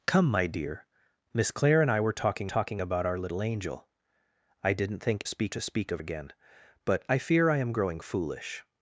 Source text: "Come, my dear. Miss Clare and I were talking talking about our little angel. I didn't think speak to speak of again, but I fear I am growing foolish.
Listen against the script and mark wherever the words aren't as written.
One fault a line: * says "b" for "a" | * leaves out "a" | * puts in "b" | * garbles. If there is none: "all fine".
all fine